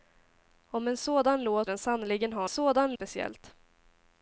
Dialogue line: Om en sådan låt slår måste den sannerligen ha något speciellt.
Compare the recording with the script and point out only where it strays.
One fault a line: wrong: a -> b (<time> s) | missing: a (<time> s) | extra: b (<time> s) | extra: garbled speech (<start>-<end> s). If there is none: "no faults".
missing: slår måste (1.7 s)
wrong: något -> sådan (2.5 s)